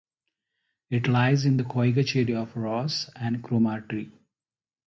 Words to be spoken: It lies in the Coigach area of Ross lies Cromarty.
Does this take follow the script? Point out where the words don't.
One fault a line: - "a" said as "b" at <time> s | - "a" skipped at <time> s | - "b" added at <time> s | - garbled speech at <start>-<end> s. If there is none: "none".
- "lies" said as "and" at 3.2 s